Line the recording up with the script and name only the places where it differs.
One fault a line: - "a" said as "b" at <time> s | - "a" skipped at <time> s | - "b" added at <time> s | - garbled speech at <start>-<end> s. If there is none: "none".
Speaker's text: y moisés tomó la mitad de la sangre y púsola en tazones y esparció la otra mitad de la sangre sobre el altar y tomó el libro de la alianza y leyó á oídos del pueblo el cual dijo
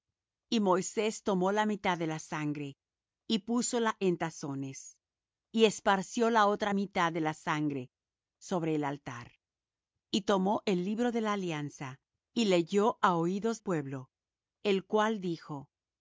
- "del" skipped at 13.6 s